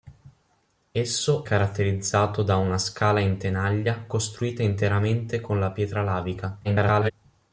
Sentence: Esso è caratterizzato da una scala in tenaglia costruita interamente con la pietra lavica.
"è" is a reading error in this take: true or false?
true